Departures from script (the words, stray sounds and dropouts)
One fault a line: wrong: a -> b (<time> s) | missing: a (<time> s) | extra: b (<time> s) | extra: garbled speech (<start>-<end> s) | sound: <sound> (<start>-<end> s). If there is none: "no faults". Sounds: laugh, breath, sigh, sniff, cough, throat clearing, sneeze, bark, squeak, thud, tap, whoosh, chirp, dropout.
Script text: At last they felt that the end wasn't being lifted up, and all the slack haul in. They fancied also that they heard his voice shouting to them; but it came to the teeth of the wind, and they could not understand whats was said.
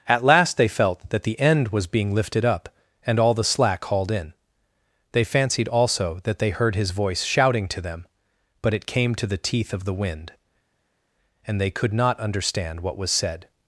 wrong: wasn't -> was (1.7 s)
wrong: haul -> hauled (3.9 s)
wrong: whats -> what (12.8 s)